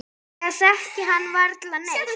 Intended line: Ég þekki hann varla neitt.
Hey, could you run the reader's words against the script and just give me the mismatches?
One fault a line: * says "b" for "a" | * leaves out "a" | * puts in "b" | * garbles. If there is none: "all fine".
all fine